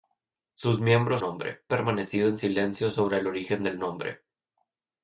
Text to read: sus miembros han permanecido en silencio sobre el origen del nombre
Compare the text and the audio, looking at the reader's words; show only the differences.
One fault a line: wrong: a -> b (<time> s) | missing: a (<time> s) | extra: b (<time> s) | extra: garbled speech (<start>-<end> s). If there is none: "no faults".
wrong: han -> nombre (1.2 s)